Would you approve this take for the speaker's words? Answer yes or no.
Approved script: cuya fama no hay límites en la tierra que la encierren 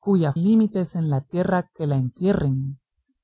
no